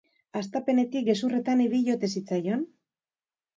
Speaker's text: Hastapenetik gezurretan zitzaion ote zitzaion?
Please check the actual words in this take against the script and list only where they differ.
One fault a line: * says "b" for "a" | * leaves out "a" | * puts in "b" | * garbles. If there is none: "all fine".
* says "ibili" for "zitzaion"